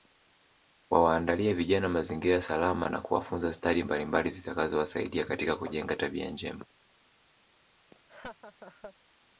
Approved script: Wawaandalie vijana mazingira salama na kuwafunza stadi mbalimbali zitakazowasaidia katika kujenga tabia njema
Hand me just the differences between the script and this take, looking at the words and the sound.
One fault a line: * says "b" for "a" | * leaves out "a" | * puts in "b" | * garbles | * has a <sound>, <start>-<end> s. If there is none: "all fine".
* has a laugh, 7.9-8.9 s